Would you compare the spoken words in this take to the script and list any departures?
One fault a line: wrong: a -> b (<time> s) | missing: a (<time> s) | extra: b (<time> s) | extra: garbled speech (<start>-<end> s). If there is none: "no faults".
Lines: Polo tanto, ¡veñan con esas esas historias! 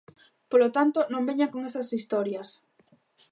extra: non (1.1 s)
missing: esas (1.9 s)